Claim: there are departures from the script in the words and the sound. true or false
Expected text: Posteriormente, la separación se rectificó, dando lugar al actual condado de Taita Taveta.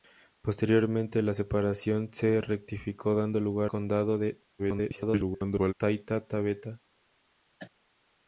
true